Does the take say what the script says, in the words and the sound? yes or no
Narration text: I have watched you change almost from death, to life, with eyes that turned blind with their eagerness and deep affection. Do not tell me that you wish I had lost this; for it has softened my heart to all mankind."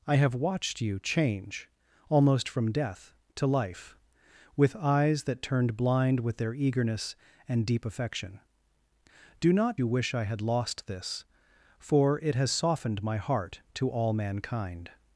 no